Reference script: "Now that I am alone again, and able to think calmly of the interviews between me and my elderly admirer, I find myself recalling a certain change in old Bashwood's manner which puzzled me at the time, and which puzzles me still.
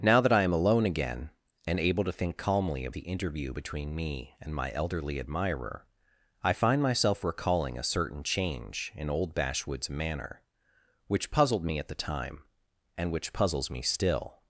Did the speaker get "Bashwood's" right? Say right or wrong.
right